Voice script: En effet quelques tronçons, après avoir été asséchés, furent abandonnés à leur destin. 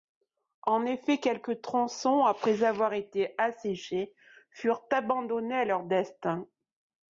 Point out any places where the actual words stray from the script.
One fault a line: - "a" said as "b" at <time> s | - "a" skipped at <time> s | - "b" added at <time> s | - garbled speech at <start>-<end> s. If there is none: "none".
none